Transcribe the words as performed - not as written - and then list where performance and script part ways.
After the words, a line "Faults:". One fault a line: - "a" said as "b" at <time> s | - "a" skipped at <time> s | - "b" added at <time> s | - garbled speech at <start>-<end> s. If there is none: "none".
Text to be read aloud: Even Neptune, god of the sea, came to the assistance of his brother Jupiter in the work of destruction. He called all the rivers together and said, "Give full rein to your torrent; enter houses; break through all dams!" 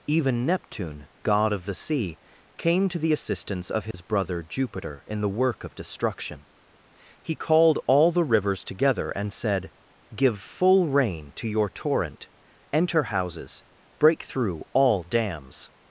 Even Neptune, god of the sea, came to the assistance of his brother Jupiter in the work of destruction. He called all the rivers together and said, "Give full rein to your torrent; enter houses; break through all dams!"
Faults:
none